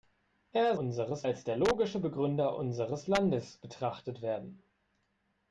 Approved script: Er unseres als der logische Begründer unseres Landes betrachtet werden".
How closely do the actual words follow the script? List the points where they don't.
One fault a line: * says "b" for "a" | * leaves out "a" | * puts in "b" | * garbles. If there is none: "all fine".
all fine